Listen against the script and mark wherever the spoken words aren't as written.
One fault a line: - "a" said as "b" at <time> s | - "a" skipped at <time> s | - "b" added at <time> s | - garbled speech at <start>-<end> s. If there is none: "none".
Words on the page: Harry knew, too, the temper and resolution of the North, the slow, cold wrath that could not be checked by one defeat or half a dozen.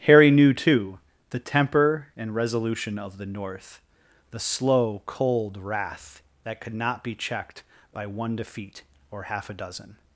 none